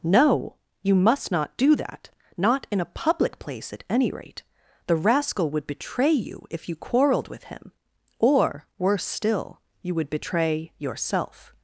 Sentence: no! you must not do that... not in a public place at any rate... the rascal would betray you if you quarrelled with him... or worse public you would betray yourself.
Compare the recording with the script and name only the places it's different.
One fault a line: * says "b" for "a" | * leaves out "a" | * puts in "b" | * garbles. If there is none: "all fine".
* says "still" for "public"